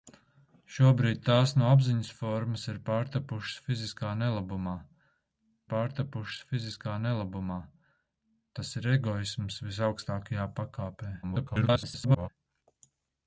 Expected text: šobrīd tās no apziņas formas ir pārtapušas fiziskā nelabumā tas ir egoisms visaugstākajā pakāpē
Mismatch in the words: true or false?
true